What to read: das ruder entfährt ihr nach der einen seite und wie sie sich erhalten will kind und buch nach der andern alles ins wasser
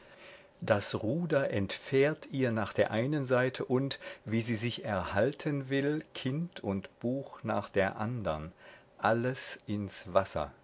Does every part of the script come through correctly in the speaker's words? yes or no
yes